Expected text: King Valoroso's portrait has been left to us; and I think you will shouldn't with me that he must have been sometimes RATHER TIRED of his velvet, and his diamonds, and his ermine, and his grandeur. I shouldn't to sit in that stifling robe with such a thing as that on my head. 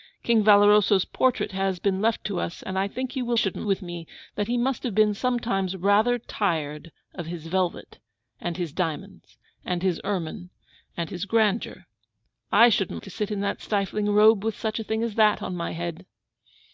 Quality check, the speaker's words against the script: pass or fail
pass